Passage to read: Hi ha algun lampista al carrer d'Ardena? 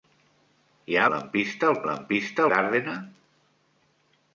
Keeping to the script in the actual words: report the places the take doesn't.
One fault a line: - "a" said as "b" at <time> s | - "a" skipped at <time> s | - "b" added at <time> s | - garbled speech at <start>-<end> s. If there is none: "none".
- "algun" skipped at 1.0 s
- "carrer" said as "lampista" at 1.9 s